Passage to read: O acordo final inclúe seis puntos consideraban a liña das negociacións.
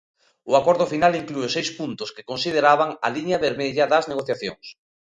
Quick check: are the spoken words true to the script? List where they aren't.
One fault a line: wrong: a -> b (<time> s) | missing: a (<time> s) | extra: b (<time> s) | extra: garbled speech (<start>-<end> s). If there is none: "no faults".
extra: que (2.1 s)
extra: vermella (3.5 s)